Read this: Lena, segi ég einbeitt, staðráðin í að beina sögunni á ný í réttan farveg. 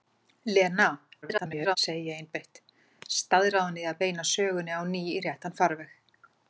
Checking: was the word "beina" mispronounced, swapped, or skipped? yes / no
no